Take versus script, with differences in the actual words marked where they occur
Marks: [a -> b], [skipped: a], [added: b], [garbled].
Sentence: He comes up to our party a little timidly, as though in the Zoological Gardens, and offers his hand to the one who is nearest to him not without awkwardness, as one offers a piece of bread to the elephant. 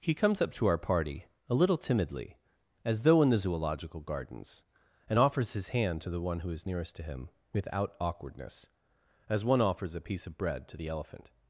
He comes up to our party a little timidly, as though in the Zoological Gardens, and offers his hand to the one who is nearest to him [skipped: not] without awkwardness, as one offers a piece of bread to the elephant.